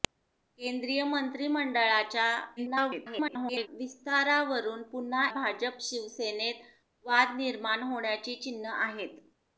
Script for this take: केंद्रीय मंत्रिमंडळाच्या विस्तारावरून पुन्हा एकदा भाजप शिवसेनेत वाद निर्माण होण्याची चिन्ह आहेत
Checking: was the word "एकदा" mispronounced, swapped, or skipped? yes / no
yes